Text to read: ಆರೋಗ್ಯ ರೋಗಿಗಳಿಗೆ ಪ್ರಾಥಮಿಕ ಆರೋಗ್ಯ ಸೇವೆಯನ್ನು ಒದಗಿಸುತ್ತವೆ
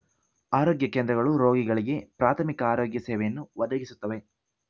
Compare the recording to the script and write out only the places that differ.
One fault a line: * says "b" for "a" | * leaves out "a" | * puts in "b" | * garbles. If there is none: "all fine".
* puts in "ಕೇಂದ್ರಗಳು"